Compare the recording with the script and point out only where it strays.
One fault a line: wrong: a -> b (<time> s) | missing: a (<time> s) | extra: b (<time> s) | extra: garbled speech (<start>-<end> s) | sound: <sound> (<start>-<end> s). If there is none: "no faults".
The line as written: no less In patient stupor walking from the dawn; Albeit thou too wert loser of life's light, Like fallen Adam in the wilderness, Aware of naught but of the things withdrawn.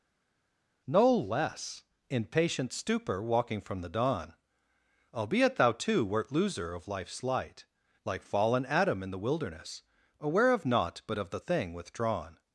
wrong: things -> thing (11.4 s)